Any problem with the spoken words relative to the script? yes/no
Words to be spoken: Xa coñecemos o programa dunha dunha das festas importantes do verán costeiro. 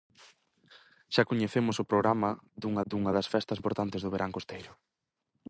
no